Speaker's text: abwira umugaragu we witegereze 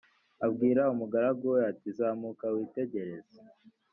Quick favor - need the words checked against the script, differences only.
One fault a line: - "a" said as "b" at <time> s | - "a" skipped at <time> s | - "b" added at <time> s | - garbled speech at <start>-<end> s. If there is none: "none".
- "ati zamuka" added at 1.7 s